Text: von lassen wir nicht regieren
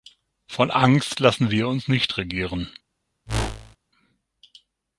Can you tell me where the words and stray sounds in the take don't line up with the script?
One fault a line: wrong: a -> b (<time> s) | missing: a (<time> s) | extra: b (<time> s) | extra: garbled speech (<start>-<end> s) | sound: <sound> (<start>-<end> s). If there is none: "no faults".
extra: angst (0.7 s)
extra: uns (1.7 s)
sound: whoosh (3.3-3.8 s)